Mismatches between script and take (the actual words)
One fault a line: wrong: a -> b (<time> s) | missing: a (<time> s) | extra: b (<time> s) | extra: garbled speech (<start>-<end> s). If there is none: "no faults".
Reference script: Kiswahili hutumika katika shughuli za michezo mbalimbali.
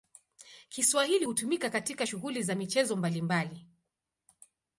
no faults